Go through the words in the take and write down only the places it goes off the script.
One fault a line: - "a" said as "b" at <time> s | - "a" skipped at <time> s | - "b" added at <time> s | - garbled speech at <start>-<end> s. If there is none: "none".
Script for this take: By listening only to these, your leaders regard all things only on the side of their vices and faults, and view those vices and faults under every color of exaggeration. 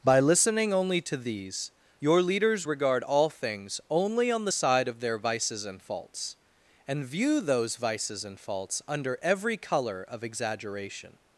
none